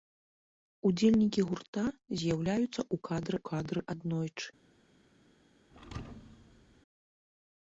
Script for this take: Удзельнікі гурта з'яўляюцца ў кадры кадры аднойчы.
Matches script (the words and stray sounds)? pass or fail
fail